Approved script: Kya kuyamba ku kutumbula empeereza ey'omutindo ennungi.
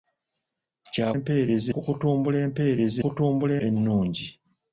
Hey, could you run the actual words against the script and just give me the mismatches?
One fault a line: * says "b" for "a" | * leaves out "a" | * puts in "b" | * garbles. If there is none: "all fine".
* says "empeereza" for "kuyamba"
* says "kutumbula" for "ey'omutindo"